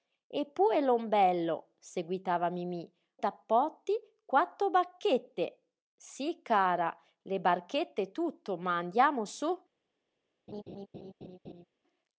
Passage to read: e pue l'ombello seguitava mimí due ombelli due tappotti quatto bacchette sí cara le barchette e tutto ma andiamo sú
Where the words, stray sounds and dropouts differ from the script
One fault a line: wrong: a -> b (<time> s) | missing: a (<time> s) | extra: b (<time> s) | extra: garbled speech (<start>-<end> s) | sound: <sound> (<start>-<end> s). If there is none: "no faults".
missing: due ombelli due (2.9 s)
sound: laugh (10.5-11.7 s)